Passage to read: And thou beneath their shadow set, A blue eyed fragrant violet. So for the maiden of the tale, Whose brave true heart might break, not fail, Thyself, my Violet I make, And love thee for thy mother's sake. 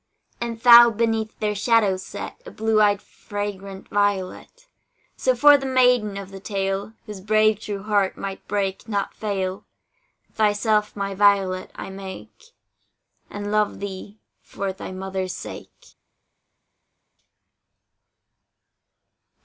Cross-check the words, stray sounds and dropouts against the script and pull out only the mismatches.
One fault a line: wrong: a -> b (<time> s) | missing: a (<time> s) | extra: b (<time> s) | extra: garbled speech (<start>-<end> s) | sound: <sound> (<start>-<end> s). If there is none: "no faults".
no faults